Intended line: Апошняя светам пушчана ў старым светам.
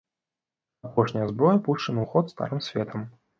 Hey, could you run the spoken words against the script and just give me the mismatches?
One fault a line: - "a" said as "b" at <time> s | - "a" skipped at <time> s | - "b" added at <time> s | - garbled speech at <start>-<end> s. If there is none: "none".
- "светам" said as "зброя" at 1.3 s
- "ход" added at 2.1 s